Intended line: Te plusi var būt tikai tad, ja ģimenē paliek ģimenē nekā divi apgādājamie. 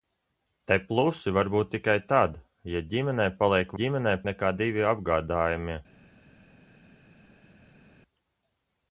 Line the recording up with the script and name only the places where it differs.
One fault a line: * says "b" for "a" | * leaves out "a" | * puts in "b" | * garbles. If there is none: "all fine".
all fine